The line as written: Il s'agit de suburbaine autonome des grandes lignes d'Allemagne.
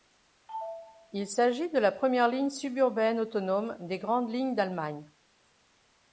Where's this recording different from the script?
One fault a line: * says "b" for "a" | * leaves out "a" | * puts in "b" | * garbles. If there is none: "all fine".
* puts in "la première ligne"